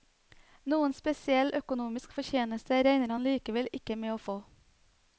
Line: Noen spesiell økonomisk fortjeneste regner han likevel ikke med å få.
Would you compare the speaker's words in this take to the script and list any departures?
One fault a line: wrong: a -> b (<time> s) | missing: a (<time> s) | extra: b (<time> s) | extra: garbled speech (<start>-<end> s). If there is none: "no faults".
no faults